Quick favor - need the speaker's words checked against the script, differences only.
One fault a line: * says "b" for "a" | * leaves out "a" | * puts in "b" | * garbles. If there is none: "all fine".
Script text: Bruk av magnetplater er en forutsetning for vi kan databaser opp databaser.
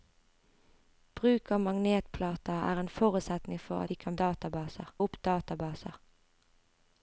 all fine